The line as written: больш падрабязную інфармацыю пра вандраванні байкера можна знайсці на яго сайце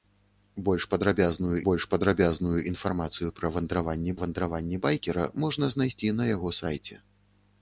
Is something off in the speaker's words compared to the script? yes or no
yes